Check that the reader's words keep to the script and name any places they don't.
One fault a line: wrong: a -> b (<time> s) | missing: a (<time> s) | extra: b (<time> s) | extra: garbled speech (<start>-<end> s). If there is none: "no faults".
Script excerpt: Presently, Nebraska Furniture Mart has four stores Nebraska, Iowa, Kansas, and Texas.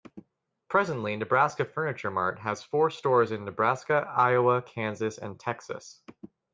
extra: in (3.3 s)